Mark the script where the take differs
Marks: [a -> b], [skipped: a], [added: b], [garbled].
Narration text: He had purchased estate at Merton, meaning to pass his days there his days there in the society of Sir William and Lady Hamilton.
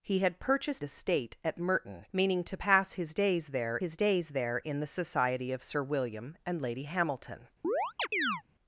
He had purchased estate at Merton, meaning to pass his days there his days there in the society of Sir William and Lady Hamilton.